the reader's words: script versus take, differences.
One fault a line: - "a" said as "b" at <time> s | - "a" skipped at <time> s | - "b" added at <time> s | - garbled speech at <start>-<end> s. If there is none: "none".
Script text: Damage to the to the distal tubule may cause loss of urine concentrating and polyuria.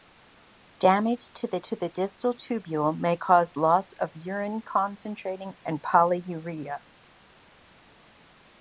none